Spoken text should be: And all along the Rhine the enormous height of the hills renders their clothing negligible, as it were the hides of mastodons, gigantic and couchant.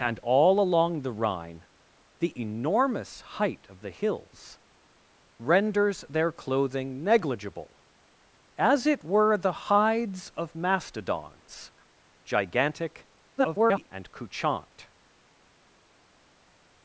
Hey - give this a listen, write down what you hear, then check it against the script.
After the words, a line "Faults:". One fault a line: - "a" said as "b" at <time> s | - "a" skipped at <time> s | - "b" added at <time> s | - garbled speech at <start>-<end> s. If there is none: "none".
And all along the Rhine the enormous height of the hills renders their clothing negligible, as it were the hides of mastodons, gigantic [garbled] and couchant.
Faults:
- garbled speech at 13.4-13.9 s